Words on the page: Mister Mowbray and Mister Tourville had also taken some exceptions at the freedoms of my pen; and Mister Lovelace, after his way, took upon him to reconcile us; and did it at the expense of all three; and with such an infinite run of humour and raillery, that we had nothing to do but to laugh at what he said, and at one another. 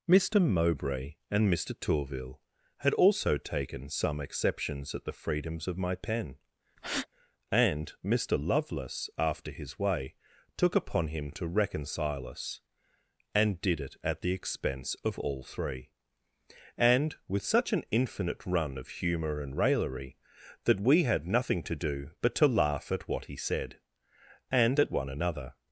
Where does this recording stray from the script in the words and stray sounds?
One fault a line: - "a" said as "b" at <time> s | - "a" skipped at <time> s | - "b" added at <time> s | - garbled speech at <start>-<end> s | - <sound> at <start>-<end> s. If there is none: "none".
- breath at 6.8-7.1 s